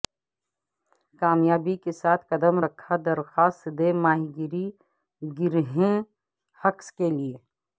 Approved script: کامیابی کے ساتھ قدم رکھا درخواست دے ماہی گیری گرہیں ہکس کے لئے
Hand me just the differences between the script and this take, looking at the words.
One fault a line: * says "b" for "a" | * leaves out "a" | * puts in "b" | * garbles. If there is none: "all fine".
all fine